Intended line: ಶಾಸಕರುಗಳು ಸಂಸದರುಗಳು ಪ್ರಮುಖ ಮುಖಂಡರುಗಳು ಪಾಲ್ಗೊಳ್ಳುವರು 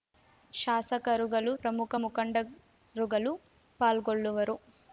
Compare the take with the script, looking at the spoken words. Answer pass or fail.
fail